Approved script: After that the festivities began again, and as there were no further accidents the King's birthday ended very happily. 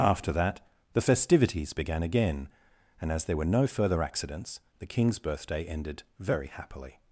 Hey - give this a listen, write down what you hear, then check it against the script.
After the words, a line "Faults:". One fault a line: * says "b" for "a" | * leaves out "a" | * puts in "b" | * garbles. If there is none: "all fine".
After that the festivities began again, and as there were no further accidents the King's birthday ended very happily.
Faults:
all fine